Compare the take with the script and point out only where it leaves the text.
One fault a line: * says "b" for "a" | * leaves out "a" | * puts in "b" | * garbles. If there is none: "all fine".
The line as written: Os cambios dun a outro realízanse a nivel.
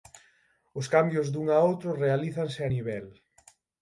all fine